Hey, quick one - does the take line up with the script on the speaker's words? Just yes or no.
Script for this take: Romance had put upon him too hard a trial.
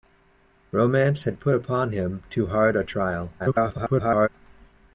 no